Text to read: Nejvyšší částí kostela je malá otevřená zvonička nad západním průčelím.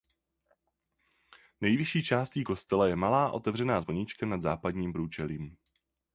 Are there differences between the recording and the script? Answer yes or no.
no